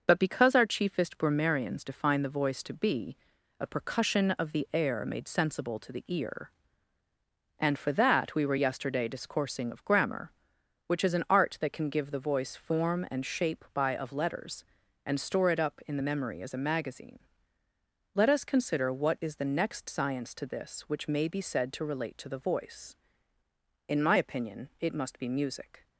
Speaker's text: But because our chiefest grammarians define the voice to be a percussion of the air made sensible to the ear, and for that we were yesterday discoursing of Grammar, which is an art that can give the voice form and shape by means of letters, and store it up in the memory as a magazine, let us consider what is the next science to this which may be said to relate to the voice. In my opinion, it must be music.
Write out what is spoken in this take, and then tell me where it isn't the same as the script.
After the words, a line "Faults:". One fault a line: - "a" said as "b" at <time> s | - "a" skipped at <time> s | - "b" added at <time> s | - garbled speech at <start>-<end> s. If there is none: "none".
But because our chiefest grammarians define the voice to be a percussion of the air made sensible to the ear, and for that we were yesterday discoursing of Grammar, which is an art that can give the voice form and shape by of letters, and store it up in the memory as a magazine, let us consider what is the next science to this which may be said to relate to the voice. In my opinion, it must be music.
Faults:
- "means" skipped at 14.0 s